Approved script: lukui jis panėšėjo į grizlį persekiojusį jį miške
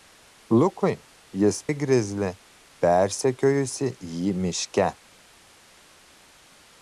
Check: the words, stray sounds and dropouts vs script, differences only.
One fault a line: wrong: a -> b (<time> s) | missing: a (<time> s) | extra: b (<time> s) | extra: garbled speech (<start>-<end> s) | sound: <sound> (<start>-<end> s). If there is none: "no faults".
missing: panėšėjo (1.6 s)